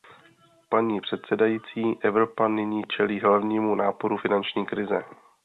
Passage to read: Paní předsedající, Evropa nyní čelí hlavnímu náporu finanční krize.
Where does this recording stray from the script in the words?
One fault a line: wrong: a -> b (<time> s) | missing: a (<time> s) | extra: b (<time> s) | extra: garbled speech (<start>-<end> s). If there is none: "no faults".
no faults